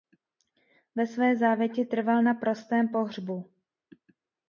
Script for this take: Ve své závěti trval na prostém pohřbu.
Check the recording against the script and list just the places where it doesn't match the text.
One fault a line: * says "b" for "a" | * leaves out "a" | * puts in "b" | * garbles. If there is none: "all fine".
all fine